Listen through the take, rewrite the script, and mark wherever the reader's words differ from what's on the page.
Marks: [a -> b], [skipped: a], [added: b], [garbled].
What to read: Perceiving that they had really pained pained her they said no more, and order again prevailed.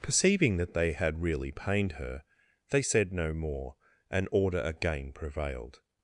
Perceiving that they had really pained [skipped: pained] her they said no more, and order again prevailed.